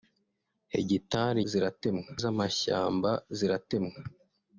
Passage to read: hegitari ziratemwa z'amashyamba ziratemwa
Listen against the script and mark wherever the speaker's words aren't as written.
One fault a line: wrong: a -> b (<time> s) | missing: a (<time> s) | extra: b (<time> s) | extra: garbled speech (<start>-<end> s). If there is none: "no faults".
no faults